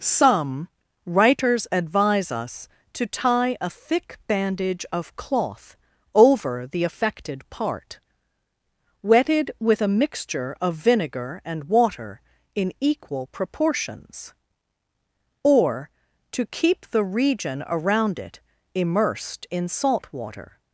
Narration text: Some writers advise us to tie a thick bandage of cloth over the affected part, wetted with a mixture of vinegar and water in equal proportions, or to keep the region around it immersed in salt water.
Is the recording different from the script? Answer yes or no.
no